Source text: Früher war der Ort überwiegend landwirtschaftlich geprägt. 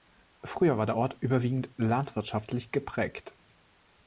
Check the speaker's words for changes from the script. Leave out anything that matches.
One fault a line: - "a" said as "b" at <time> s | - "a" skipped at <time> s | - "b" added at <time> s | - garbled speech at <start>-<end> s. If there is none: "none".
none